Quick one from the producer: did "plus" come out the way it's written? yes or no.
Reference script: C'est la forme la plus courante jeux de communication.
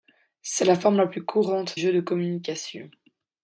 yes